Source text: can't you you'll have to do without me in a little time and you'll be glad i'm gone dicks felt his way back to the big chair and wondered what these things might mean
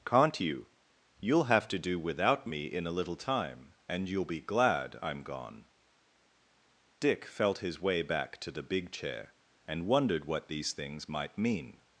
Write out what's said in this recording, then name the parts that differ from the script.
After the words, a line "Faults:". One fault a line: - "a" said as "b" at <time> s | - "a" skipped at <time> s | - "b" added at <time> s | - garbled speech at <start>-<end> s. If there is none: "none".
can't you you'll have to do without me in a little time and you'll be glad i'm gone dick felt his way back to the big chair and wondered what these things might mean
Faults:
- "dicks" said as "dick" at 7.0 s